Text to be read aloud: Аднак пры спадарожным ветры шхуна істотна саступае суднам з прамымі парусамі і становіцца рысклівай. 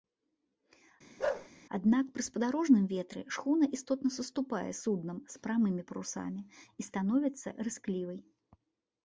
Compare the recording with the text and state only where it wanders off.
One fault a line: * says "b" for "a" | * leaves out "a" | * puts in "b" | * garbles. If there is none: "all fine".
all fine